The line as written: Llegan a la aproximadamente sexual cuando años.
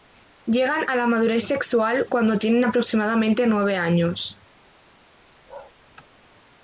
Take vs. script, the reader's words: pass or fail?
fail